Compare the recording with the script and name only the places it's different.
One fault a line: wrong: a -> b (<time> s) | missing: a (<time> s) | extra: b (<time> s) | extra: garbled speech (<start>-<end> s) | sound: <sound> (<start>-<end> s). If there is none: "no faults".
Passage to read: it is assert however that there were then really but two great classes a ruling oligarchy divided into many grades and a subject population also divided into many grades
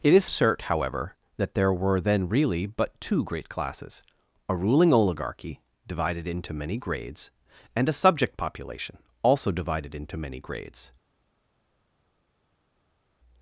no faults